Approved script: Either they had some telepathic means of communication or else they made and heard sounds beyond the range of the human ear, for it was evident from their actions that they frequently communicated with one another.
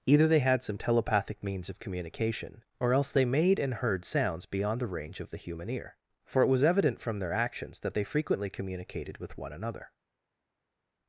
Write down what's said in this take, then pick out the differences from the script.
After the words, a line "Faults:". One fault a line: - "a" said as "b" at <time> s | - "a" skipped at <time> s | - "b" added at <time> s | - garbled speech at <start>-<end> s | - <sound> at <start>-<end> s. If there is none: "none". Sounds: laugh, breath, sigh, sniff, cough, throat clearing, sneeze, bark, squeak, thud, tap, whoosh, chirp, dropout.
Either they had some telepathic means of communication or else they made and heard sounds beyond the range of the human ear, for it was evident from their actions that they frequently communicated with one another.
Faults:
none